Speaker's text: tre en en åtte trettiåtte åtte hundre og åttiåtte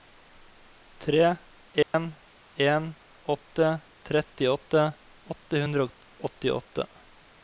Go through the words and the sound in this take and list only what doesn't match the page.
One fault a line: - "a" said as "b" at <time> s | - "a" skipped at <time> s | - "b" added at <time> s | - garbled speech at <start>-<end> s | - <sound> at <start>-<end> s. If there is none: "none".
- dropout at 1.8-1.9 s